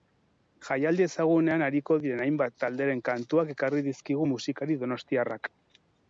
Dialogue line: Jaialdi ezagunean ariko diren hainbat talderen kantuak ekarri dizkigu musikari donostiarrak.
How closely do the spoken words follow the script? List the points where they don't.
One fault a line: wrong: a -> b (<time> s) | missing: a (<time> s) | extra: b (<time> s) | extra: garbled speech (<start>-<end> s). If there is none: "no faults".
no faults